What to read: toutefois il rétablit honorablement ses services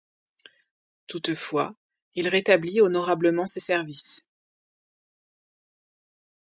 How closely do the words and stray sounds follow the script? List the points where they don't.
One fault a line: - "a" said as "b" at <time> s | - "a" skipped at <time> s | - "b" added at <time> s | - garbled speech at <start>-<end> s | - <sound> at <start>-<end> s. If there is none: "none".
none